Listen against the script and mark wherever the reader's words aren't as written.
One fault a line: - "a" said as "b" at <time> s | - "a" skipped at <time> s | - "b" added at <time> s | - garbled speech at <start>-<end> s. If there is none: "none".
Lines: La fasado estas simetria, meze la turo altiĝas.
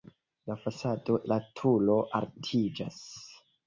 - "estas simetria meze" skipped at 1.2 s